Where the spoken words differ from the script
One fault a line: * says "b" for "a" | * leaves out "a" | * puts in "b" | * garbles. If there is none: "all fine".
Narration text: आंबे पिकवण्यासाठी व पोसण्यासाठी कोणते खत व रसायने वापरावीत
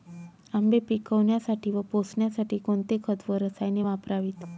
all fine